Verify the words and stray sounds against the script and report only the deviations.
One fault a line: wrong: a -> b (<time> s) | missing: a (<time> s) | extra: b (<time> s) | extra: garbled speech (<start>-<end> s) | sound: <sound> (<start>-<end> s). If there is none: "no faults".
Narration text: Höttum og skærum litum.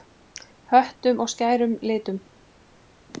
no faults